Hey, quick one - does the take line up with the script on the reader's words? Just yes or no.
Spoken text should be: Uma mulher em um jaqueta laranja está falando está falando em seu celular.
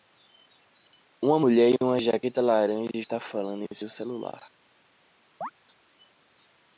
no